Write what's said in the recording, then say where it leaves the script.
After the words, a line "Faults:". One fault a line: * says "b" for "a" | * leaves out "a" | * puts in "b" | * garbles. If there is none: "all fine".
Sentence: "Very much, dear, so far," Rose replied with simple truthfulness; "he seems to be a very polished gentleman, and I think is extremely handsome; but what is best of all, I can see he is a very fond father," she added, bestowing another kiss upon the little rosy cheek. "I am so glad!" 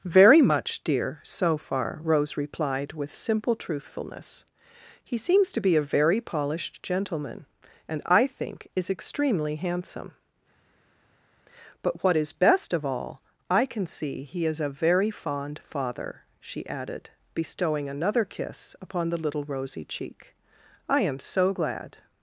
"Very much, dear, so far," Rose replied with simple truthfulness; "he seems to be a very polished gentleman, and I think is extremely handsome; but what is best of all, I can see he is a very fond father," she added, bestowing another kiss upon the little rosy cheek. "I am so glad!"
Faults:
all fine